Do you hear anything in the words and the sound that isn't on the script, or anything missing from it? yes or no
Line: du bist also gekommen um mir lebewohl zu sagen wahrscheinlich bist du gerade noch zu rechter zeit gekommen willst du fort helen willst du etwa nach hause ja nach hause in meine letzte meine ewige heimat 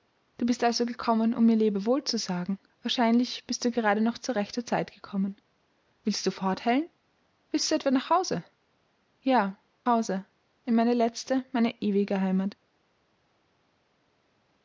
yes